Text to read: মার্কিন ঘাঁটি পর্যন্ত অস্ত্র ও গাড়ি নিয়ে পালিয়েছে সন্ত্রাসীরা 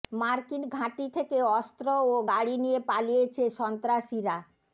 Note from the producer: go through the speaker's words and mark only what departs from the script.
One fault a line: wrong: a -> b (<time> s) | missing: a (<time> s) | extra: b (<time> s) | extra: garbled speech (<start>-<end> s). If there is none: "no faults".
wrong: পর্যন্ত -> থেকে (1.1 s)